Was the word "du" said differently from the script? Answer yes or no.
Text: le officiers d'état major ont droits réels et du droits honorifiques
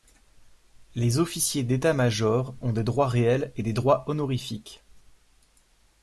yes